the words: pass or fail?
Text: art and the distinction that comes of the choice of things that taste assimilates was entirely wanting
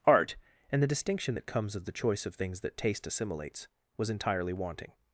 pass